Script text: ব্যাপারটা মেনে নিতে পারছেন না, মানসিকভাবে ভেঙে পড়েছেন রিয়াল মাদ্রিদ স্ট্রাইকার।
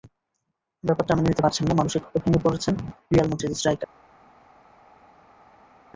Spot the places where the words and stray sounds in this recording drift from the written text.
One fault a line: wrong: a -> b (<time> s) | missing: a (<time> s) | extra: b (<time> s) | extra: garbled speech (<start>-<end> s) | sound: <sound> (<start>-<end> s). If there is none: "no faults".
no faults